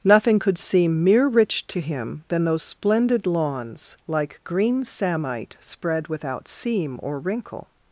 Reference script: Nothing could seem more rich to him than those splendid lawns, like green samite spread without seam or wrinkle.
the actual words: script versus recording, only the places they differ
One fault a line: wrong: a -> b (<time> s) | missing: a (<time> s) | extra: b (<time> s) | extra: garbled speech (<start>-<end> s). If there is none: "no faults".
wrong: more -> mere (1.0 s)